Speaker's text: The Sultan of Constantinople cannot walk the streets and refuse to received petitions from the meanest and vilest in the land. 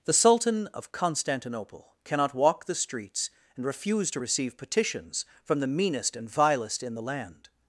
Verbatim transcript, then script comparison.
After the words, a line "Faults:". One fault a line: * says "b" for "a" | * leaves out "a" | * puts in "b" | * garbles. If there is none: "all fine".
The Sultan of Constantinople cannot walk the streets and refuse to receive petitions from the meanest and vilest in the land.
Faults:
* says "receive" for "received"